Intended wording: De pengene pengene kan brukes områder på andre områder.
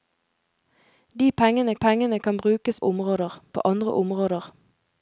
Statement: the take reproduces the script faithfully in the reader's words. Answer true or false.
true